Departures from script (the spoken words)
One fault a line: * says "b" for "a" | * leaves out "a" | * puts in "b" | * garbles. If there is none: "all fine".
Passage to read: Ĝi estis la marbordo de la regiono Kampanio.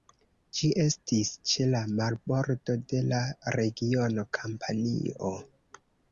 * puts in "ĉe"